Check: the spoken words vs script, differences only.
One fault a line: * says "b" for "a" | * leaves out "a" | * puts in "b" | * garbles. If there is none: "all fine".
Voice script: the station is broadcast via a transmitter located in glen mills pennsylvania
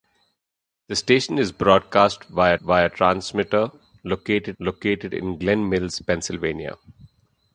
* puts in "via"
* puts in "located"